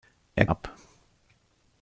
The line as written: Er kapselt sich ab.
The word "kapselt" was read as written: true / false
false